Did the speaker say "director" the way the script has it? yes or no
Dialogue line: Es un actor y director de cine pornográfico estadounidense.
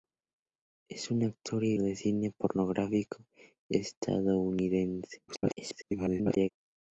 no